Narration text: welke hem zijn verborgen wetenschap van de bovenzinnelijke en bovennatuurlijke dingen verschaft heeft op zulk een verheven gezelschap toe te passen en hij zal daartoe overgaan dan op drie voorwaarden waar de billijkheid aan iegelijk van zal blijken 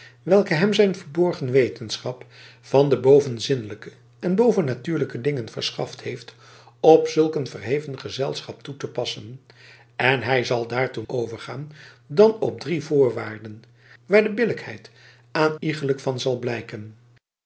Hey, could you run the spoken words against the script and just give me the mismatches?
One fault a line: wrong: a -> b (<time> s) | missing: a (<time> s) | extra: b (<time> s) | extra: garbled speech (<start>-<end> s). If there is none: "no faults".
no faults